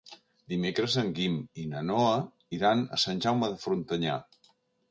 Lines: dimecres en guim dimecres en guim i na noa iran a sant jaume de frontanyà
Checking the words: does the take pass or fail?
fail